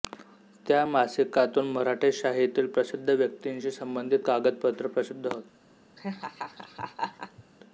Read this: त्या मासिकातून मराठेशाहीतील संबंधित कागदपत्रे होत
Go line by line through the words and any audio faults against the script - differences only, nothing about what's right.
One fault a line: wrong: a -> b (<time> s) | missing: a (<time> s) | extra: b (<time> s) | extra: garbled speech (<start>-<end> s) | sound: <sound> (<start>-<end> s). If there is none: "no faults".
extra: प्रसिद्ध व्यक्तींशी (2.7 s)
extra: प्रसिद्ध (4.9 s)
sound: laugh (6.0-7.4 s)